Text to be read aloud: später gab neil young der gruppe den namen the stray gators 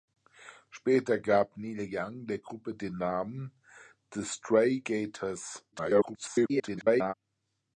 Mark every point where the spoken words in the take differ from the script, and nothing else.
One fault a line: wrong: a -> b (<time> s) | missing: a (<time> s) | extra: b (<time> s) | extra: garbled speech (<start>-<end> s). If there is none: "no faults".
extra: garbled speech (5.7-7.1 s)